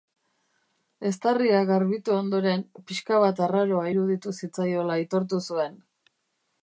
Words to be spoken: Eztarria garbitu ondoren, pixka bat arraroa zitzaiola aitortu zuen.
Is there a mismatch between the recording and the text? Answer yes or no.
yes